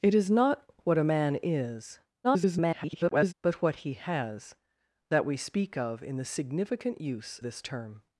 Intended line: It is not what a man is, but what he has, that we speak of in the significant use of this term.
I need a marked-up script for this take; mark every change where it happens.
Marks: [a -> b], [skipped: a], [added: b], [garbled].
It is not what a man is, [garbled] but what he has, that we speak of in the significant use [skipped: of] this term.